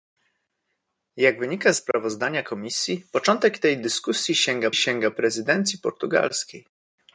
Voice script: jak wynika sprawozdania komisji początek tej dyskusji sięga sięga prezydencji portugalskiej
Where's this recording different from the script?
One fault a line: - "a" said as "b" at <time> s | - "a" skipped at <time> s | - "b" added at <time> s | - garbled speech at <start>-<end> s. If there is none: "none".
none